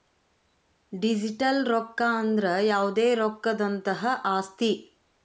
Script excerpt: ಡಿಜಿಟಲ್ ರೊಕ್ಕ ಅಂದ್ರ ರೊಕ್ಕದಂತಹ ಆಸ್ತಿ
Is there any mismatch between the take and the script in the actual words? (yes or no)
yes